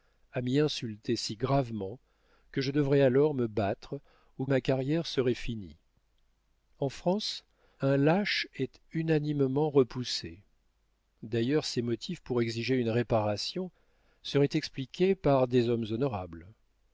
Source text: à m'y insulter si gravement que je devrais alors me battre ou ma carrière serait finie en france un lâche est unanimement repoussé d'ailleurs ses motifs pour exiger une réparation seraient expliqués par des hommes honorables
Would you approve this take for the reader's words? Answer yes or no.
yes